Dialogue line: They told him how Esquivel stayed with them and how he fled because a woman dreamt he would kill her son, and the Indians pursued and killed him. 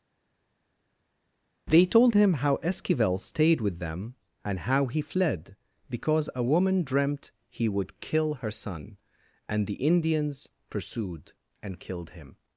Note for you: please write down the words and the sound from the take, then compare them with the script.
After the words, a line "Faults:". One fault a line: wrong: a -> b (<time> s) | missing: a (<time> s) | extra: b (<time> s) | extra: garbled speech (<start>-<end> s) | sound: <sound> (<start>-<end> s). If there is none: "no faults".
They told him how Esquivel stayed with them and how he fled because a woman dreamt he would kill her son, and the Indians pursued and killed him.
Faults:
no faults